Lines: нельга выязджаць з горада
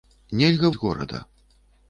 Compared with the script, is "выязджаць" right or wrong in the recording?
wrong